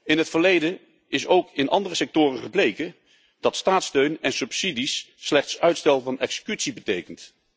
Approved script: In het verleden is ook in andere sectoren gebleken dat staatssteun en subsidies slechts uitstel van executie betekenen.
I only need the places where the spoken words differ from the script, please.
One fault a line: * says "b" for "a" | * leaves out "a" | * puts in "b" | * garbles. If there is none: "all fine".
all fine